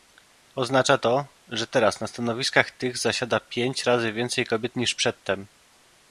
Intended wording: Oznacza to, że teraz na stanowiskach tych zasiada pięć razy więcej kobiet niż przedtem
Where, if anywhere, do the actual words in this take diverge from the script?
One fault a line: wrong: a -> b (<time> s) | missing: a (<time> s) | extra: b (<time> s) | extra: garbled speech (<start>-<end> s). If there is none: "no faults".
no faults